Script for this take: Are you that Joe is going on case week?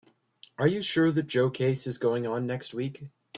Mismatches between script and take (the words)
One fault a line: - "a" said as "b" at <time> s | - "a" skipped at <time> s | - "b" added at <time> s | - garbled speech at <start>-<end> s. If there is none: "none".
- "sure" added at 0.8 s
- "case" added at 1.5 s
- "case" said as "next" at 2.5 s